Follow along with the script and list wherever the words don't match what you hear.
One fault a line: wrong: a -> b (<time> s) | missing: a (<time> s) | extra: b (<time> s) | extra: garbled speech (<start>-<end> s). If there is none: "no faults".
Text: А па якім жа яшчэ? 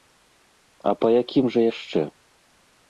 no faults